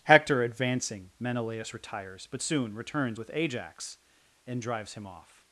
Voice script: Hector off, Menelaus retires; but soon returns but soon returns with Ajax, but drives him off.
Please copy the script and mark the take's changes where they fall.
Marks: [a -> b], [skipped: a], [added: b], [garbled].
Hector [off, -> advancing] Menelaus retires; but soon returns [skipped: but soon returns] with Ajax, [but -> and] drives him off.